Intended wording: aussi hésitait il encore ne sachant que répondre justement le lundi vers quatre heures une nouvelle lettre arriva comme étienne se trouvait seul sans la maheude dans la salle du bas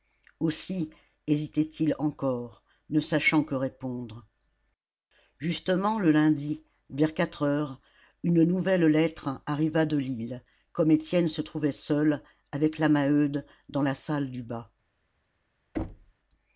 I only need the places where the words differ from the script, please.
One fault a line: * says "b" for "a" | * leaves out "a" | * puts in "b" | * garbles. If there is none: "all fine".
* puts in "de lille"
* says "avec" for "sans"